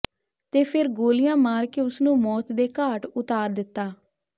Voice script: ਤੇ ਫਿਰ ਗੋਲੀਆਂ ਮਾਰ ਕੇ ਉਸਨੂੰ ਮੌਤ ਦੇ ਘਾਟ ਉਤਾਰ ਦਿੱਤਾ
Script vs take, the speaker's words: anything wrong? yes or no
no